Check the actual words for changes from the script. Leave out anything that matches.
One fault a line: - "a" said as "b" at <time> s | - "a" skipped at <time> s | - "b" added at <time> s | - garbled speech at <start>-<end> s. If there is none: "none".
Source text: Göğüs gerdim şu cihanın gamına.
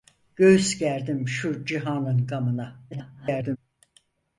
- garbled speech at 2.9-3.6 s